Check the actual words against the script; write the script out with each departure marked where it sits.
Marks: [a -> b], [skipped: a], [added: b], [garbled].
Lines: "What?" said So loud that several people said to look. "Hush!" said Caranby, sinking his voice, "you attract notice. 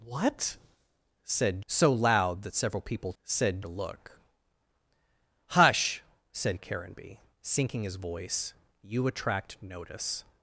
"What?" said So loud that several people said to look. "Hush!" said Caranby, sinking his voice, "you attract notice.